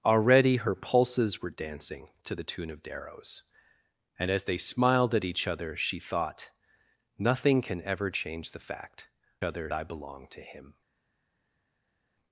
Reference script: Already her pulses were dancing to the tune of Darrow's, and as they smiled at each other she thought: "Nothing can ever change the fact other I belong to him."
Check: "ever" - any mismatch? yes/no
no